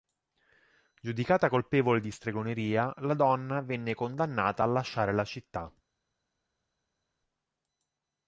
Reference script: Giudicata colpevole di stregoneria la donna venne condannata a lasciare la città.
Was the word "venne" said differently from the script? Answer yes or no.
no